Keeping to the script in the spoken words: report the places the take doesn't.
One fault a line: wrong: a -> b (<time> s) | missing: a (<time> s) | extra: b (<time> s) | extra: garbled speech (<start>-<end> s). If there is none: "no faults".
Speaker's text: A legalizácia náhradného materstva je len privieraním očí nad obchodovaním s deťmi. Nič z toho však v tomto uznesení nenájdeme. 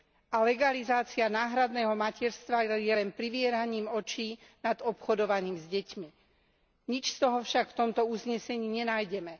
no faults